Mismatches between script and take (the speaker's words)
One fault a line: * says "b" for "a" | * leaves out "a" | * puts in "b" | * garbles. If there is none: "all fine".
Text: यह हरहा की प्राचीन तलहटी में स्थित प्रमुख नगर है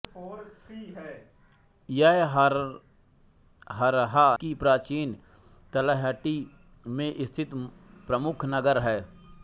all fine